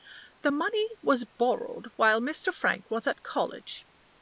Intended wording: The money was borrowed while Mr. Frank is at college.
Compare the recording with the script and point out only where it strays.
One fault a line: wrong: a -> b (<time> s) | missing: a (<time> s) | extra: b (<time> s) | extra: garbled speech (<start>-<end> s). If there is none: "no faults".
wrong: is -> was (2.9 s)